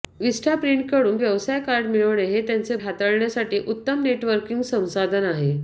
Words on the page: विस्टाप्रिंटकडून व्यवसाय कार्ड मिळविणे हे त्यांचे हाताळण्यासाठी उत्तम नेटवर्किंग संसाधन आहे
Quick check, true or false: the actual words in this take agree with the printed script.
true